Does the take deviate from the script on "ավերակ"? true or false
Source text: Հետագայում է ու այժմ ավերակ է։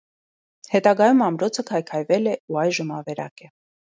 false